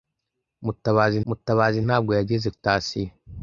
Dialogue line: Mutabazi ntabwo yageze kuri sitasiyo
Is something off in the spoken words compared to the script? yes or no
yes